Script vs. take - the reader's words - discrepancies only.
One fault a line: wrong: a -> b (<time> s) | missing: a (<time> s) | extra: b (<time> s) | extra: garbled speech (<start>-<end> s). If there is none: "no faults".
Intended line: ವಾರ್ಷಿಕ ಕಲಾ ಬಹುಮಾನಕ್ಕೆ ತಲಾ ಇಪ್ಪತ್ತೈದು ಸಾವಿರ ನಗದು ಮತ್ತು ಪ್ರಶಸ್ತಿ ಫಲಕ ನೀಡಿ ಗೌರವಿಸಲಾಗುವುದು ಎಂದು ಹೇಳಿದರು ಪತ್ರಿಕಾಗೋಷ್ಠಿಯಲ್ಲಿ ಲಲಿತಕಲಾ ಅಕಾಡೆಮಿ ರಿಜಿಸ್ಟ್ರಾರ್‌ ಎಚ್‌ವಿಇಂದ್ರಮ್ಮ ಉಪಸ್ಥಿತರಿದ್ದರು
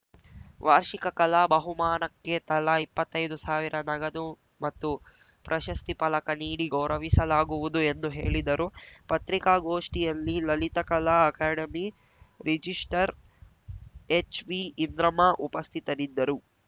no faults